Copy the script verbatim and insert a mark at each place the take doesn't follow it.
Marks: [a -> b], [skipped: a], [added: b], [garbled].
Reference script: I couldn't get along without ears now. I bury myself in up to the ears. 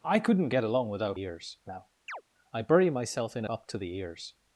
I couldn't get along without ears now. I bury myself in up to the ears.